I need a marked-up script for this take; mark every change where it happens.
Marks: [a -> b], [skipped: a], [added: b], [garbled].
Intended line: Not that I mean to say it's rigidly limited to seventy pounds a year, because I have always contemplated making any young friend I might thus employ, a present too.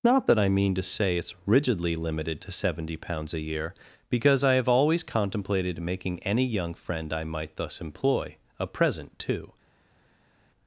Not that I mean to say it's rigidly limited to seventy pounds a year, because I have always contemplated making any young friend I might thus employ, a present too.